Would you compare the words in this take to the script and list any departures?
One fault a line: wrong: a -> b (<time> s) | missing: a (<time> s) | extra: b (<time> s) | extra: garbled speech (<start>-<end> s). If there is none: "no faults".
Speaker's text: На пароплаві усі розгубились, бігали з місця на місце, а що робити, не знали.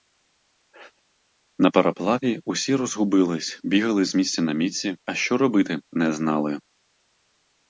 no faults